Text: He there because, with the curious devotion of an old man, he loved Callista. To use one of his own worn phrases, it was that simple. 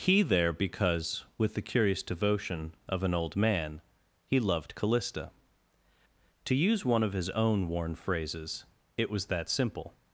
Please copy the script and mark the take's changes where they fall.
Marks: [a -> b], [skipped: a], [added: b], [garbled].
He there because, with the curious devotion of an old man, he loved Callista. To use one of his own worn phrases, it was that simple.